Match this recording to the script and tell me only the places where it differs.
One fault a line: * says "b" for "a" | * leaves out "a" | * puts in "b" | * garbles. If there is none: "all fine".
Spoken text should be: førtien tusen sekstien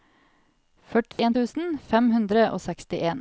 * puts in "fem hundre og"